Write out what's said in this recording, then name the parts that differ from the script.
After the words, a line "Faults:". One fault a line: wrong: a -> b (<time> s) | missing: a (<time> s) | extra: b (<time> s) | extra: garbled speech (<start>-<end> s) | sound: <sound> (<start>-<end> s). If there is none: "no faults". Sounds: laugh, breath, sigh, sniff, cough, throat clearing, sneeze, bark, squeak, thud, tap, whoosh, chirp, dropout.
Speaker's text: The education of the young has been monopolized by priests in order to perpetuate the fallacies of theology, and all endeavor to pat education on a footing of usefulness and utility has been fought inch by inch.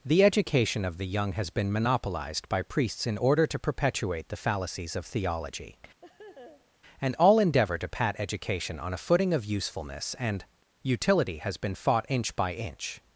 The education of the young has been monopolized by priests in order to perpetuate the fallacies of theology, and all endeavor to pat education on a footing of usefulness and utility has been fought inch by inch.
Faults:
sound: laugh (6.0-6.8 s)